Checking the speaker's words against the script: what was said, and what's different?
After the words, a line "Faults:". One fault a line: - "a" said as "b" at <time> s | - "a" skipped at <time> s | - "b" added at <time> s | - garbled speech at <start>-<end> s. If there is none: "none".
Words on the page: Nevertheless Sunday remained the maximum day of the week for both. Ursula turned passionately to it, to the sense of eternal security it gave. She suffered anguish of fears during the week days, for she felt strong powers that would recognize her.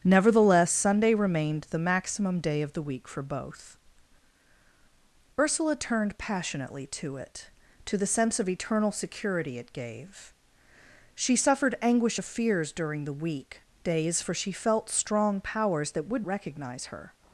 Nevertheless Sunday remained the maximum day of the week for both. Ursula turned passionately to it, to the sense of eternal security it gave. She suffered anguish of fears during the week days, for she felt strong powers that would recognize her.
Faults:
none